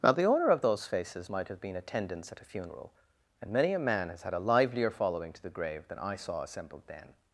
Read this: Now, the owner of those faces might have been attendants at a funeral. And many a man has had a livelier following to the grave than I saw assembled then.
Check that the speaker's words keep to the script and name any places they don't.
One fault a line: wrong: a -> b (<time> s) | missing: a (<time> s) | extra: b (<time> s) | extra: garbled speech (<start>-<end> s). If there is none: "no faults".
no faults